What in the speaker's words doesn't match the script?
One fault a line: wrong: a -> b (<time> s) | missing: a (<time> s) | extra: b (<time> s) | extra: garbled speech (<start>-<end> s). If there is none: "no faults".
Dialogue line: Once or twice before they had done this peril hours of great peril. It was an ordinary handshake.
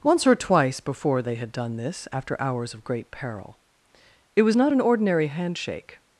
wrong: peril -> after (2.1 s)
extra: not (4.5 s)